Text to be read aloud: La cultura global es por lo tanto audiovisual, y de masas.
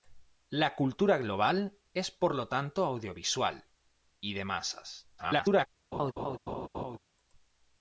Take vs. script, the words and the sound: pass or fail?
fail